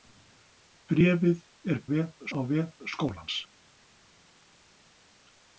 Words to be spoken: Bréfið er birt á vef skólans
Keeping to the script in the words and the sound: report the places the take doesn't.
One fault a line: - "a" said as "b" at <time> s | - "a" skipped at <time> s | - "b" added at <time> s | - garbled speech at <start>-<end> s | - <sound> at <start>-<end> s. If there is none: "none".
- "birt" said as "vef" at 1.9 s